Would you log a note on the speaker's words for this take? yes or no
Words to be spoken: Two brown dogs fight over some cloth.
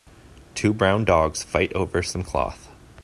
no